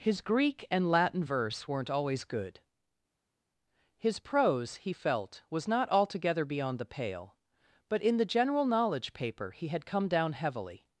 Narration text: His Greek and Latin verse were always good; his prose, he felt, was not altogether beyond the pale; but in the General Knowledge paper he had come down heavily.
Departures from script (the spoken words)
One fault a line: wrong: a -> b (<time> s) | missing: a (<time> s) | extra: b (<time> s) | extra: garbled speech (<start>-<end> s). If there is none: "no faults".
wrong: were -> weren't (1.7 s)